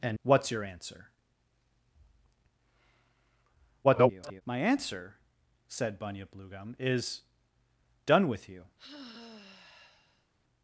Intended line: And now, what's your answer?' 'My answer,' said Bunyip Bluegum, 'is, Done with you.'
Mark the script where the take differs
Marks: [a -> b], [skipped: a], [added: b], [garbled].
And [skipped: now,] what's your answer?' [garbled] 'My answer,' said Bunyip Bluegum, 'is, Done with you.'